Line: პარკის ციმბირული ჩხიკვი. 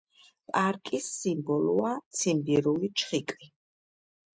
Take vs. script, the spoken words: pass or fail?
fail